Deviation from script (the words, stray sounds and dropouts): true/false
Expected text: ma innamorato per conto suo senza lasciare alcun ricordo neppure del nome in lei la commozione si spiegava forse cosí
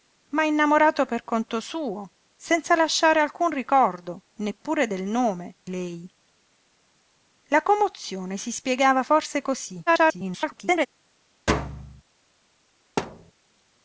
true